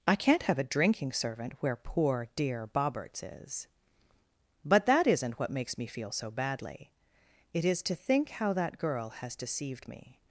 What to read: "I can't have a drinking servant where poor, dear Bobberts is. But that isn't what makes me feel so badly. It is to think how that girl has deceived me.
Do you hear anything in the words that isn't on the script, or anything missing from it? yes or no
no